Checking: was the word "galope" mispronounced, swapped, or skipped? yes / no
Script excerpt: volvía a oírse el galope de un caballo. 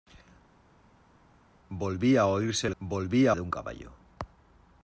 yes